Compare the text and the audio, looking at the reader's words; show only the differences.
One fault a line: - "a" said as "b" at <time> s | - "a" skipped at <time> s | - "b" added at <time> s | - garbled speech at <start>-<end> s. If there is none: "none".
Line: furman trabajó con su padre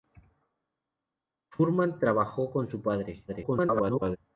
- garbled speech at 3.3-4.2 s